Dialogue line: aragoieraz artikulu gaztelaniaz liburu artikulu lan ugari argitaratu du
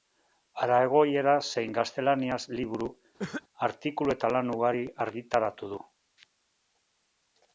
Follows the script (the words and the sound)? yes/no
no